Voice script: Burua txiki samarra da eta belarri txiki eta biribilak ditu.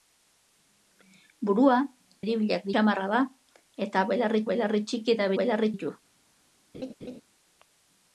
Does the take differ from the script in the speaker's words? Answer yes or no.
yes